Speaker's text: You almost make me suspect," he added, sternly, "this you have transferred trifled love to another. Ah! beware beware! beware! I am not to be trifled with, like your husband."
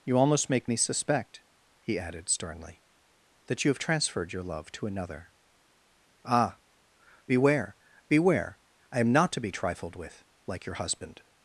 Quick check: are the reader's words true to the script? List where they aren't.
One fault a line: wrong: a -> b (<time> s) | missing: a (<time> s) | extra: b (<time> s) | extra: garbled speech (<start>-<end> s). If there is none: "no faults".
wrong: this -> that (3.5 s)
wrong: trifled -> your (4.3 s)
missing: beware (8.6 s)